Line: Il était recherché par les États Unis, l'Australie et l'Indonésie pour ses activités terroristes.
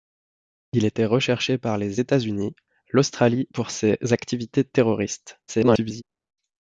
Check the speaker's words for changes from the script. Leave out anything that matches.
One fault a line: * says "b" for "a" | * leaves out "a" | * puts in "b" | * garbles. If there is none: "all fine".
* leaves out "et l'Indonésie"
* garbles